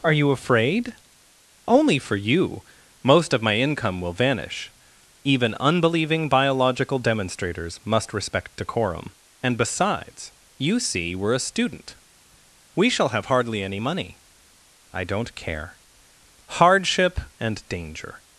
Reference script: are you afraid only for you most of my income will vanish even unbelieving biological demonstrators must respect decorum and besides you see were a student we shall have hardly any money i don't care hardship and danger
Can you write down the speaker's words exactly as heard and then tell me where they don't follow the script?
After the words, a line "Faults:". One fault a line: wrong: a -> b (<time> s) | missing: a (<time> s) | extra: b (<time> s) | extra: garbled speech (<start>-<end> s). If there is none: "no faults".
are you afraid only for you most of my income will vanish even unbelieving biological demonstrators must respect decorum and besides you see were a student we shall have hardly any money i don't care hardship and danger
Faults:
no faults